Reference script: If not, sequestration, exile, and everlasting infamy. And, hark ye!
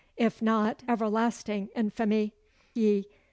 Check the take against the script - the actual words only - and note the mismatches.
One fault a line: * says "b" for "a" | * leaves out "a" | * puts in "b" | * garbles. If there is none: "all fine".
* leaves out "sequestration exile and"
* leaves out "And hark"